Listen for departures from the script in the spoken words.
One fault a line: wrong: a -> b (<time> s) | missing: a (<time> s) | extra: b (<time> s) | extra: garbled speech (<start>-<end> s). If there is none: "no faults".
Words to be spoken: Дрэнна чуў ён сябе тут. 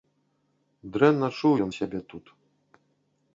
no faults